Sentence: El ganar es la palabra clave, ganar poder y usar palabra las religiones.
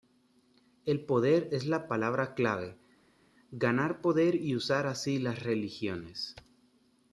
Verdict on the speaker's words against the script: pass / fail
fail